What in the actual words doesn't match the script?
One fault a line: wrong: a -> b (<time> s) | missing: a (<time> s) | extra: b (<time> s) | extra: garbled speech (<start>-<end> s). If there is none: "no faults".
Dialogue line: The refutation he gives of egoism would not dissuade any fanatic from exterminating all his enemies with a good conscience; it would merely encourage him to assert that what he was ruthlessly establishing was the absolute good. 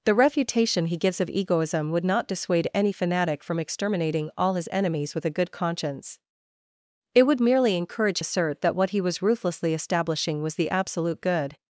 missing: him to (8.2 s)